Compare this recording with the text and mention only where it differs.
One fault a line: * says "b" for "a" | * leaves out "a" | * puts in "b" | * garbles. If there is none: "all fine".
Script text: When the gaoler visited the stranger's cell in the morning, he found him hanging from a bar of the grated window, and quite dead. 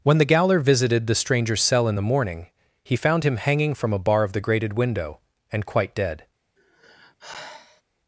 all fine